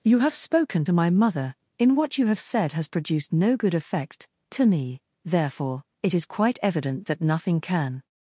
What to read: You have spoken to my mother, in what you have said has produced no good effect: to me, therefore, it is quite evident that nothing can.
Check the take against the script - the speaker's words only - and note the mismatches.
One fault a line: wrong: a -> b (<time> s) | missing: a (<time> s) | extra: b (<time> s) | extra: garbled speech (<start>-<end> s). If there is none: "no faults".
no faults